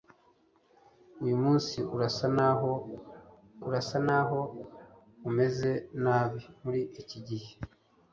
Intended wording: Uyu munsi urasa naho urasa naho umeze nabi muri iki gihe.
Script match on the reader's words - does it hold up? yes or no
yes